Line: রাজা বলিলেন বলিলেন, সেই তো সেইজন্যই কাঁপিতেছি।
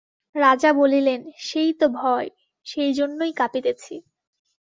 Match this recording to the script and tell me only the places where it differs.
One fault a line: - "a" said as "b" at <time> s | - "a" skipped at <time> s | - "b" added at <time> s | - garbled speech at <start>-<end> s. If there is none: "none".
- "বলিলেন" skipped at 1.2 s
- "ভয়" added at 1.9 s